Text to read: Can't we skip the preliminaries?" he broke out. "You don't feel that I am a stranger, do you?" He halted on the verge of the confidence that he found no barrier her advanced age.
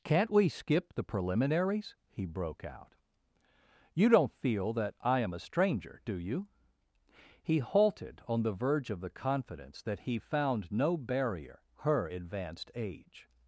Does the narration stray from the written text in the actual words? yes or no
no